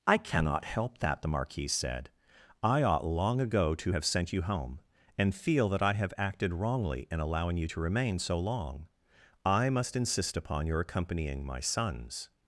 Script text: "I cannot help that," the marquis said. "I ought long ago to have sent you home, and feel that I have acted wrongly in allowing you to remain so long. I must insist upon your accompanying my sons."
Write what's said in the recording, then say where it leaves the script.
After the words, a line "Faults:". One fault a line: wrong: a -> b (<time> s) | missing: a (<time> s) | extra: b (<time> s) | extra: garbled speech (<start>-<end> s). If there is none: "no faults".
"I cannot help that," the marquis said. "I ought long ago to have sent you home, and feel that I have acted wrongly in allowing you to remain so long. I must insist upon your accompanying my sons."
Faults:
no faults